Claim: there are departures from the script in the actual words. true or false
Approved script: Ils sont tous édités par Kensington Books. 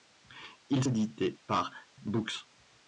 true